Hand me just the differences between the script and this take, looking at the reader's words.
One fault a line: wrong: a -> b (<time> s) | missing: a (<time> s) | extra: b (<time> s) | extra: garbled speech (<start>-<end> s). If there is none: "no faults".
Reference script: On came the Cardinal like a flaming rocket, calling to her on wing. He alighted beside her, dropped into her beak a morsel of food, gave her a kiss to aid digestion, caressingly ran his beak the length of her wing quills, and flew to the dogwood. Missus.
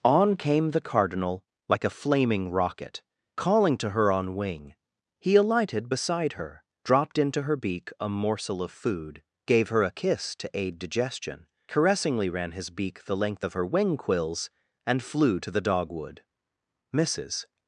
no faults